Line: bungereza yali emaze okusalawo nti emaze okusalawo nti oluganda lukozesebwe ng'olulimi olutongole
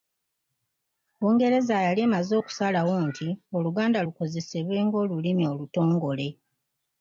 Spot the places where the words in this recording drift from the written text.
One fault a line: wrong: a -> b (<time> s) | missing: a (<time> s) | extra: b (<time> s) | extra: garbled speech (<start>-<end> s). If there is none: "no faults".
missing: emaze okusalawo nti (3.3 s)